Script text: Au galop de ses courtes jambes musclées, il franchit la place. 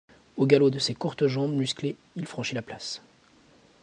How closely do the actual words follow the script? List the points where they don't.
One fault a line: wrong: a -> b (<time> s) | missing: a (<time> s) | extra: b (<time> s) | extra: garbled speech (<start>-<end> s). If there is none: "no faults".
no faults